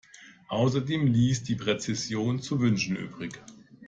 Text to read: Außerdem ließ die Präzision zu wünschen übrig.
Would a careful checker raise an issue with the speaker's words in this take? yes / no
no